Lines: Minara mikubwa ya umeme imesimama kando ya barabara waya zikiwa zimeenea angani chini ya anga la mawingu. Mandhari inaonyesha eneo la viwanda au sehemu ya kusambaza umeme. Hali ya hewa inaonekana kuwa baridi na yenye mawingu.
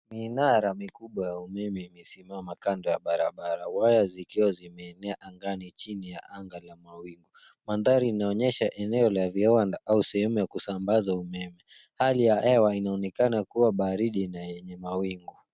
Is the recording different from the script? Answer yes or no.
no